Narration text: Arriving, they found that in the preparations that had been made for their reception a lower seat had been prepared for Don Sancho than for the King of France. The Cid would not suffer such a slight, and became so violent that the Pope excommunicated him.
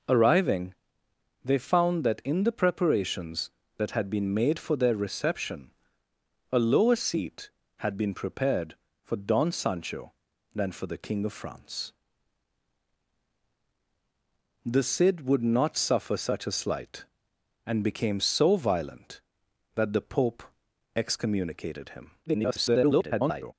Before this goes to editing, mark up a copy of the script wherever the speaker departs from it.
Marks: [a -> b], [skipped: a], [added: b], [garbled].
Arriving, they found that in the preparations that had been made for their reception a lower seat had been prepared for Don Sancho than for the King of France. The Cid would not suffer such a slight, and became so violent that the Pope excommunicated him. [garbled]